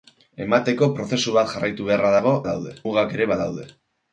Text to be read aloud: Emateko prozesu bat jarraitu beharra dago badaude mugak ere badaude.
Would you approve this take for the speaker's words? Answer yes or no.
yes